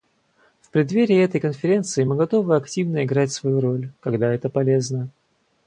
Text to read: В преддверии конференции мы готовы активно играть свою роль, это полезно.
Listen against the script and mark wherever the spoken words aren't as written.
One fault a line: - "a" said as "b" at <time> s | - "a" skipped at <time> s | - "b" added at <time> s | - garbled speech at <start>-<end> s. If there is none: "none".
- "этой" added at 1.2 s
- "когда" added at 4.0 s